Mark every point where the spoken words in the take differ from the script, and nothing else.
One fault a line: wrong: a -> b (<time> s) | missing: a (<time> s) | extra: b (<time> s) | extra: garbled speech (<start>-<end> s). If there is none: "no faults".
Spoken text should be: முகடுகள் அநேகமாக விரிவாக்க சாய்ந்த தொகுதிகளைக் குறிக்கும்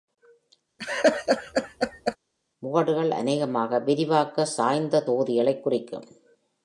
no faults